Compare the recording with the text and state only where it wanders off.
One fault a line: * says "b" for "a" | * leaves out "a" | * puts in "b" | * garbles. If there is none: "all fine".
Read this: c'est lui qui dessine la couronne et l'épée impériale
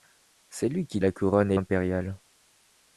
* leaves out "dessine"
* leaves out "l'épée"